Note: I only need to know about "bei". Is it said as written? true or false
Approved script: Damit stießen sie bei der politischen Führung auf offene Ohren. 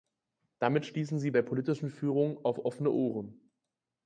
false